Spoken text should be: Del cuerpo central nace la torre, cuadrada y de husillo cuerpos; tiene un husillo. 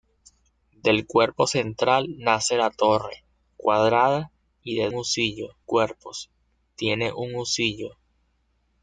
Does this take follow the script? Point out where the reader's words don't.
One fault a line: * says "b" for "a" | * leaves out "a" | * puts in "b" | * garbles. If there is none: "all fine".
all fine